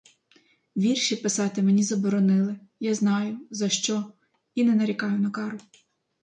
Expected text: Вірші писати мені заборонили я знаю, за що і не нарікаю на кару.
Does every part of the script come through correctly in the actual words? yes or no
yes